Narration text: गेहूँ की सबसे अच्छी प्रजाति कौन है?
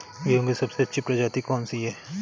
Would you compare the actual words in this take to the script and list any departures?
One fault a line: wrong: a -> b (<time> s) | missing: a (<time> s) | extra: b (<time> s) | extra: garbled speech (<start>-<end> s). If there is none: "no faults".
extra: सी (1.6 s)